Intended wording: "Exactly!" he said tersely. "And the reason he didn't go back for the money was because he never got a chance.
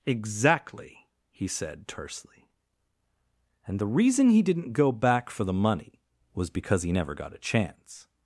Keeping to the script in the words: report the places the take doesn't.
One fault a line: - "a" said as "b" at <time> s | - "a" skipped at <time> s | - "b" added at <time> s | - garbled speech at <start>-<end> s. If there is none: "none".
none